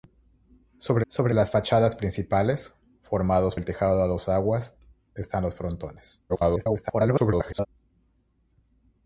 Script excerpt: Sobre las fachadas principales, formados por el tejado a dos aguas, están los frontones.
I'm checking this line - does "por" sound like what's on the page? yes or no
no